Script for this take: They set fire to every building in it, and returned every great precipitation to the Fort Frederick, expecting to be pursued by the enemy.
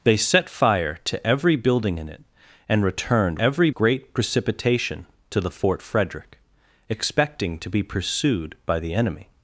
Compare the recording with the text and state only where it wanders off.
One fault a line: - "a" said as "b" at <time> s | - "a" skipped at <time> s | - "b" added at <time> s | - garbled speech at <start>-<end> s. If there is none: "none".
none